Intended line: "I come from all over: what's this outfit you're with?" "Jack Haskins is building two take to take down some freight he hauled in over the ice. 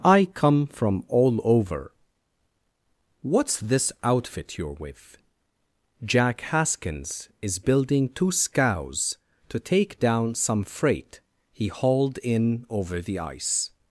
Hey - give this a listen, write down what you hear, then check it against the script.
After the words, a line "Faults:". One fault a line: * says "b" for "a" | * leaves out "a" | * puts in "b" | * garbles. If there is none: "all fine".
"I come from all over: what's this outfit you're with?" "Jack Haskins is building two scows to take down some freight he hauled in over the ice.
Faults:
* says "scows" for "take"